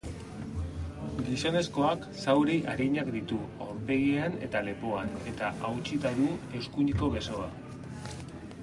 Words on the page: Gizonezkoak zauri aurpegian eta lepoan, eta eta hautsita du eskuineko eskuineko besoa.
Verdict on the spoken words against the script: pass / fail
fail